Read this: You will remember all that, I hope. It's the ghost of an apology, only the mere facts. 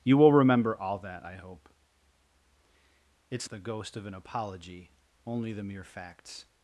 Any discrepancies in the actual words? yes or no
no